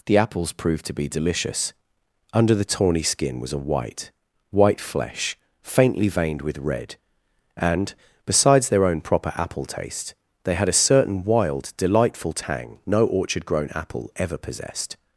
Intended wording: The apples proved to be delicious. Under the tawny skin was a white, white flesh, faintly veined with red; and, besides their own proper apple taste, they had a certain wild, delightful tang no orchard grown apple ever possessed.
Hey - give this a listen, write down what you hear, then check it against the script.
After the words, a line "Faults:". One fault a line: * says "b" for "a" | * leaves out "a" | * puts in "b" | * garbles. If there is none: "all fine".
The apples proved to be delicious. Under the tawny skin was a white, white flesh, faintly veined with red; and, besides their own proper apple taste, they had a certain wild, delightful tang no orchard grown apple ever possessed.
Faults:
all fine